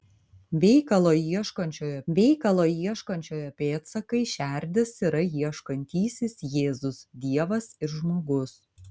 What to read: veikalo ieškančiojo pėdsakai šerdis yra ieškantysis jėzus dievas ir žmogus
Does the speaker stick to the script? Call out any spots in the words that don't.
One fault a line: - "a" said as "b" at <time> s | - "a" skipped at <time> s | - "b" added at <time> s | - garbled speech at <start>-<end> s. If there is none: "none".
- "veikalo ieškančiojo" added at 2.2 s